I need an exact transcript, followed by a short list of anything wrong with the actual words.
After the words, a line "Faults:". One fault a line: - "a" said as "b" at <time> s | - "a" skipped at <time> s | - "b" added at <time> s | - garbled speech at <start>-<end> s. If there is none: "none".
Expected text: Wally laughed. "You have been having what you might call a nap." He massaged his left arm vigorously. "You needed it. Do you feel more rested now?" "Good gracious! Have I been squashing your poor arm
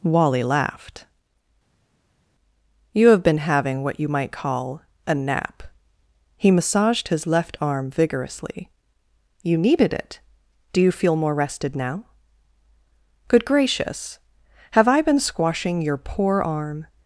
Wally laughed. "You have been having what you might call a nap." He massaged his left arm vigorously. "You needed it. Do you feel more rested now?" "Good gracious! Have I been squashing your poor arm
Faults:
none